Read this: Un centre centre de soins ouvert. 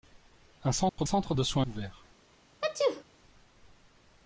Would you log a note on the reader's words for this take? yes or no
no